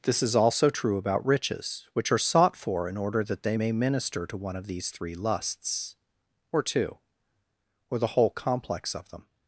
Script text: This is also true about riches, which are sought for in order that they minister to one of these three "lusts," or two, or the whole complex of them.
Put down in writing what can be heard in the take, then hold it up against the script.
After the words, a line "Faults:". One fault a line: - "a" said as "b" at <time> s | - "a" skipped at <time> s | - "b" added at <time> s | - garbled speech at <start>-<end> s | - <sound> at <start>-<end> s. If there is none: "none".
This is also true about riches, which are sought for in order that they may minister to one of these three "lusts," or two, or the whole complex of them.
Faults:
- "may" added at 3.5 s